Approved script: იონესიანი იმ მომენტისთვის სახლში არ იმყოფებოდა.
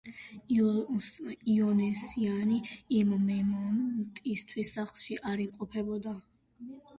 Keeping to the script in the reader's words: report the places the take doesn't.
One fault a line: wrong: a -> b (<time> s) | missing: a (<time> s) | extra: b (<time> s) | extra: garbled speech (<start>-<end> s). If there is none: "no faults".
no faults